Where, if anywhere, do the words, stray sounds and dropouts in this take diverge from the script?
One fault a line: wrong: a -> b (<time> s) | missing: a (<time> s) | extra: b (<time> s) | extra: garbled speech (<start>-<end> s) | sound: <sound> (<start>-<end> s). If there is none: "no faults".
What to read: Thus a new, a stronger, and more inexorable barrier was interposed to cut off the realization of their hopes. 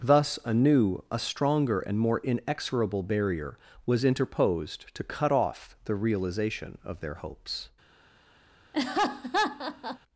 sound: laugh (8.7-10.0 s)